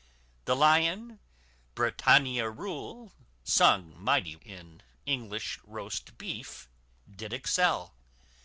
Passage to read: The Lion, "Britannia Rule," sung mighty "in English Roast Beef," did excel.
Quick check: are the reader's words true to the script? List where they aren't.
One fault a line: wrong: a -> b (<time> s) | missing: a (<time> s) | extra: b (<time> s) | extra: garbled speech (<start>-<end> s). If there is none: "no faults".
no faults